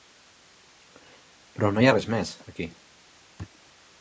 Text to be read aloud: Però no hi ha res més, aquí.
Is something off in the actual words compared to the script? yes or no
no